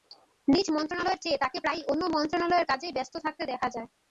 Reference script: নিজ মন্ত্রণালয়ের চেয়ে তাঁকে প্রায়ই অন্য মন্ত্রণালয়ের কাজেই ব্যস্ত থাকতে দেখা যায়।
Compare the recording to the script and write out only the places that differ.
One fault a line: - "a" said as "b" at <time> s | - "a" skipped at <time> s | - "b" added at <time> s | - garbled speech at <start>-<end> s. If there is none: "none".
none